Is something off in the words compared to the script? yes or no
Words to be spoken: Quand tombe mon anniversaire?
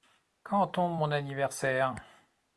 no